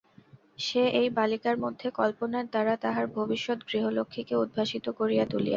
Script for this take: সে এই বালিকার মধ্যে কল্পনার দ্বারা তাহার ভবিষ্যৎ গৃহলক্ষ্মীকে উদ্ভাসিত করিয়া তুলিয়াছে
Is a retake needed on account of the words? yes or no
no